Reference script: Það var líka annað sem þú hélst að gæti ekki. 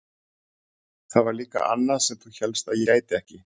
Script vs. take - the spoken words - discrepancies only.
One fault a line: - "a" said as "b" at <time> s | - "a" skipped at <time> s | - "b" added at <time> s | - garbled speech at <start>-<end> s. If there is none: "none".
none